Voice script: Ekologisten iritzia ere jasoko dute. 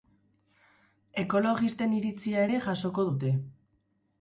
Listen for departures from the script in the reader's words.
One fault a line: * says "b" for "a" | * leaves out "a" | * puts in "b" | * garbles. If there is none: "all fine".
all fine